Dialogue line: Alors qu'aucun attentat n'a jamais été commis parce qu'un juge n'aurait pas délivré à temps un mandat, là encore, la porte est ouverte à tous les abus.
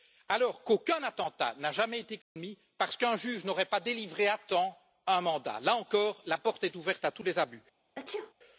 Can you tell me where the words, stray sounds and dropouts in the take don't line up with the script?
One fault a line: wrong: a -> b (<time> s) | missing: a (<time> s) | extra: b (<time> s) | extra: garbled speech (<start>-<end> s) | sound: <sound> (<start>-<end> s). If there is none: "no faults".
sound: dropout (2.2-2.4 s)
sound: sneeze (7.9-8.3 s)